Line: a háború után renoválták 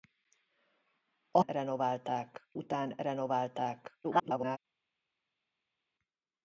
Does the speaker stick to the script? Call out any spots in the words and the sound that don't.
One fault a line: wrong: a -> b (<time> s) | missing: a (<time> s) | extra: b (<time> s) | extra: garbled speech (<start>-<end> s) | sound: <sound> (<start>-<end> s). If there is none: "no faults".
wrong: háború -> renoválták (1.4 s)
extra: garbled speech (4.0-4.6 s)